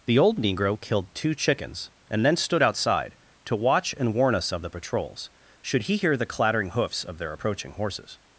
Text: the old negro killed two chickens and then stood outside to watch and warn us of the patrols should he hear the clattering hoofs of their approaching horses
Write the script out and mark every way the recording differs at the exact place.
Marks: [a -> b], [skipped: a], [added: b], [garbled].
the old negro killed two chickens and then stood outside to watch and warn us of the patrols should he hear the clattering hoofs of their approaching horses